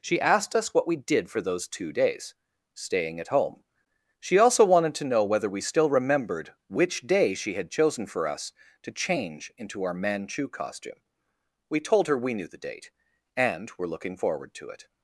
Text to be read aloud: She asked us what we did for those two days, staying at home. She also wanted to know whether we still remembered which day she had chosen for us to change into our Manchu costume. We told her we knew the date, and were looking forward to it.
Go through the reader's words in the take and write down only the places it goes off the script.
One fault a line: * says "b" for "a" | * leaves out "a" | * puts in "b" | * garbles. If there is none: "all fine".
all fine